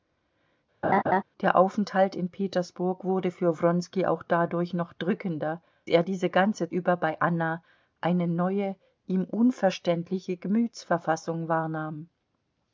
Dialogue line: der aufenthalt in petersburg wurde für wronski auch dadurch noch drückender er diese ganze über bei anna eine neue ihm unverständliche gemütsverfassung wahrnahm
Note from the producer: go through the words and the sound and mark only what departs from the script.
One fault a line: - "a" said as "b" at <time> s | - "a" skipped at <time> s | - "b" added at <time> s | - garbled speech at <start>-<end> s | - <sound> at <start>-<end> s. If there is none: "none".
- laugh at 0.8-1.2 s